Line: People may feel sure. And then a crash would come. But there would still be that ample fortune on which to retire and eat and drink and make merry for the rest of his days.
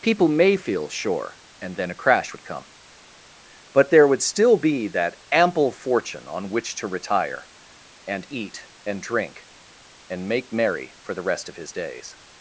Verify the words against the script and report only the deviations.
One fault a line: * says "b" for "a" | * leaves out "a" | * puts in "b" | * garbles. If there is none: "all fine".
all fine